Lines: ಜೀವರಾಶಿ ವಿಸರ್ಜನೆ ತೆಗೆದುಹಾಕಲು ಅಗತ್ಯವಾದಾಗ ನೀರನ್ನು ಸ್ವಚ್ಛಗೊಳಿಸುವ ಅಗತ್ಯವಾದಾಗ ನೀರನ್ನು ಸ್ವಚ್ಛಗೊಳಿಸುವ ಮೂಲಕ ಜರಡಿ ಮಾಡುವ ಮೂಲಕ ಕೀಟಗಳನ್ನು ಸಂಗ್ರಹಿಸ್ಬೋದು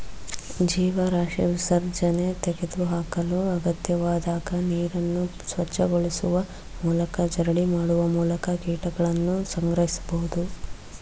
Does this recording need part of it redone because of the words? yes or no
yes